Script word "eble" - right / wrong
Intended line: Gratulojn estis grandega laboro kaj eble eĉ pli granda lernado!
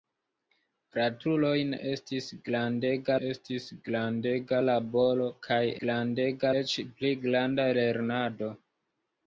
wrong